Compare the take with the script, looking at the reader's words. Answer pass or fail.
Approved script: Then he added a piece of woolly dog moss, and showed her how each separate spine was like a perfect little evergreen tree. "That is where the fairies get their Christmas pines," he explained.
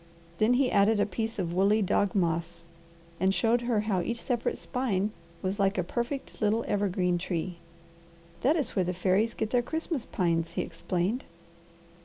pass